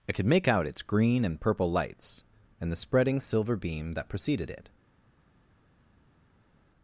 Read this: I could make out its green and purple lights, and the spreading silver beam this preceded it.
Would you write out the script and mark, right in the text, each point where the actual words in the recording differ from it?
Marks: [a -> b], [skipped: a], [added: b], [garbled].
I could make out its green and purple lights, and the spreading silver beam [this -> that] preceded it.